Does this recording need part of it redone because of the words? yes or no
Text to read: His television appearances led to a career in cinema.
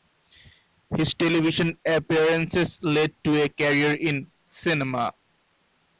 no